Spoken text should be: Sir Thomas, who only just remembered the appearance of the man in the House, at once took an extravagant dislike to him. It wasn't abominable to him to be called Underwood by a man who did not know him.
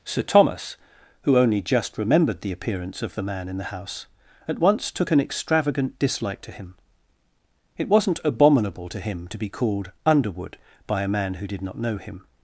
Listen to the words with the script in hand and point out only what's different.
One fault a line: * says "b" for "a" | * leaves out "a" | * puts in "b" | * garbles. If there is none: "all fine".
all fine